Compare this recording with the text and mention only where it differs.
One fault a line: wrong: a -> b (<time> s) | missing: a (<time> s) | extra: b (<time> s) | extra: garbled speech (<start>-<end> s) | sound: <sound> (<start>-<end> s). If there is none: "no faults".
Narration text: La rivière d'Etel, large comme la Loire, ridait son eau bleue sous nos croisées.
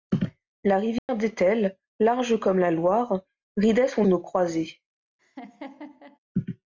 sound: dropout (1.0-1.1 s)
missing: eau bleue sous (4.1 s)
sound: laugh (5.2-6.2 s)